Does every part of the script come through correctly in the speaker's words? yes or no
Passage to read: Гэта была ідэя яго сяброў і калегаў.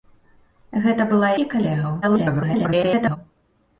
no